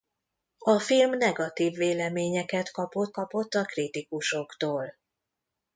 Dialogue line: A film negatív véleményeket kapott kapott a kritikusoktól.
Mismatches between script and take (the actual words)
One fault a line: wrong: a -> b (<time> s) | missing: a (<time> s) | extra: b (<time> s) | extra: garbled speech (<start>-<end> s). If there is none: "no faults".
no faults